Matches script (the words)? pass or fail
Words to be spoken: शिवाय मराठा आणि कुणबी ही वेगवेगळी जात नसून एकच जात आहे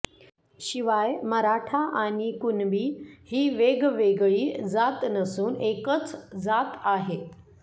pass